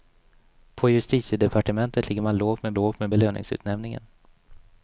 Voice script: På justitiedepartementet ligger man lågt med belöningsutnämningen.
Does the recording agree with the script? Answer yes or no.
no